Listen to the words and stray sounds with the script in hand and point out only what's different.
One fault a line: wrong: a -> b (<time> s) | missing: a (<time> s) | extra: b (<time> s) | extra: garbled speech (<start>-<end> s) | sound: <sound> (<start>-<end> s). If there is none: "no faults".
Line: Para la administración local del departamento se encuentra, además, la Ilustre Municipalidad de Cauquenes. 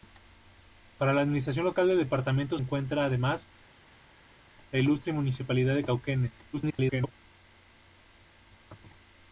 missing: se (2.6 s)
extra: garbled speech (6.5-7.1 s)